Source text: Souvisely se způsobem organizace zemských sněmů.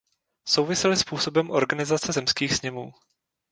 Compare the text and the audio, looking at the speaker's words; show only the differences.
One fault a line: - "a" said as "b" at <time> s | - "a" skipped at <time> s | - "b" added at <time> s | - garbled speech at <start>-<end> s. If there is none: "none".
- "se" skipped at 1.0 s